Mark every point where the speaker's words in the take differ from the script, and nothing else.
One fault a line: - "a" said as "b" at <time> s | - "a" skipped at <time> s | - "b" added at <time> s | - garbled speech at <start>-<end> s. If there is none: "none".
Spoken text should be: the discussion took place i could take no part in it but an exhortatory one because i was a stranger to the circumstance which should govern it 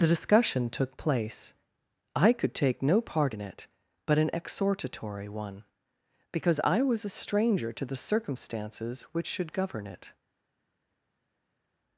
- "circumstance" said as "circumstances" at 8.0 s